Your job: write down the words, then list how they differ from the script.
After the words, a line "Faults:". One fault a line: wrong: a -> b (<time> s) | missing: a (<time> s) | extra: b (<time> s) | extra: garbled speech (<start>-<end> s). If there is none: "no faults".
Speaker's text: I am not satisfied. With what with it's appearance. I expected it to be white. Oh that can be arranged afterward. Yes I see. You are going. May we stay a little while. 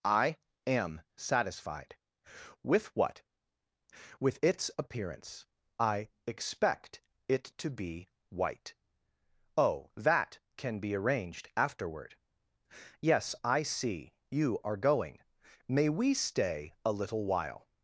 I am satisfied. With what with it's appearance. I expect it to be white. Oh that can be arranged afterward. Yes I see. You are going. May we stay a little while.
Faults:
missing: not (1.0 s)
wrong: expected -> expect (6.3 s)